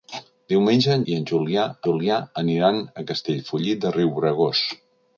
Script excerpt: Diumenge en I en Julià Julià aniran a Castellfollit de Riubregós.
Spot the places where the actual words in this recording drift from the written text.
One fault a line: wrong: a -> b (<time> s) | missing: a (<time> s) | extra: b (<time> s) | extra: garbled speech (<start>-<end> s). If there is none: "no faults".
no faults